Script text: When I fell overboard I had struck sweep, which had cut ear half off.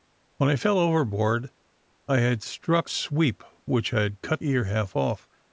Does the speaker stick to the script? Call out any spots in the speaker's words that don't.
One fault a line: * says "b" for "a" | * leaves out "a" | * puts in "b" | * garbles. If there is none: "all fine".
all fine